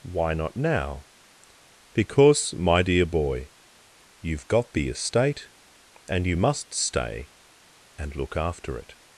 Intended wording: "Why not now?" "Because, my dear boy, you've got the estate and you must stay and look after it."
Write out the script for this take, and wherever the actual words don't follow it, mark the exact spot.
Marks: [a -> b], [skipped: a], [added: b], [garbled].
"Why not now?" "Because, my dear boy, you've got the estate and you must stay and look after it."